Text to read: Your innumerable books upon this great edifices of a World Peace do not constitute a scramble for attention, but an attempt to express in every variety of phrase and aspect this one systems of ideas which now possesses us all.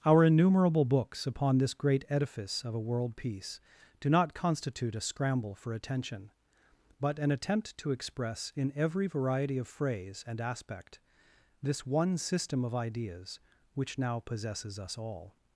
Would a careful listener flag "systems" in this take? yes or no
yes